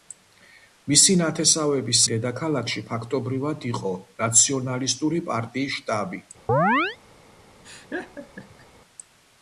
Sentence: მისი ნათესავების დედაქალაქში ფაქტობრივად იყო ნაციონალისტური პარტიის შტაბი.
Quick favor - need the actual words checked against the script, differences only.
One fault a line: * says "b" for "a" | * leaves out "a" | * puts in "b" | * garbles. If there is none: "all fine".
all fine